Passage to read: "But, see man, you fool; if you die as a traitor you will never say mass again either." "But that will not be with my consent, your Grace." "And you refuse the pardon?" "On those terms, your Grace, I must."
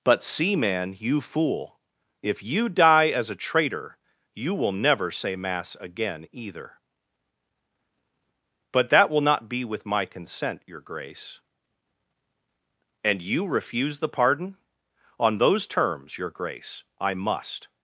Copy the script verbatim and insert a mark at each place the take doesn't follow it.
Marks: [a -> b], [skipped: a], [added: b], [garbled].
"But, see man, you fool; if you die as a traitor you will never say mass again either." "But that will not be with my consent, your Grace." "And you refuse the pardon?" "On those terms, your Grace, I must."